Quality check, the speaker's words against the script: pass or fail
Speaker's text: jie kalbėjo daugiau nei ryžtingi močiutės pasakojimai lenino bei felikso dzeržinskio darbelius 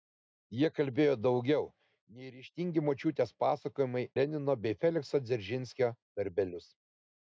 pass